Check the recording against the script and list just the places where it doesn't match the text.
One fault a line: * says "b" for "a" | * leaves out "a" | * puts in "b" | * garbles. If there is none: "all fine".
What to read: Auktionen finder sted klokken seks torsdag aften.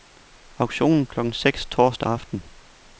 * leaves out "finder sted"